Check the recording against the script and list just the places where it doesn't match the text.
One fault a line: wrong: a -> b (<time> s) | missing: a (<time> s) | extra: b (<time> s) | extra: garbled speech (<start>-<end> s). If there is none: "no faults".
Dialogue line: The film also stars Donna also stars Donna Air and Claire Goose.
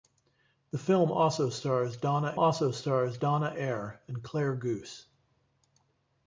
no faults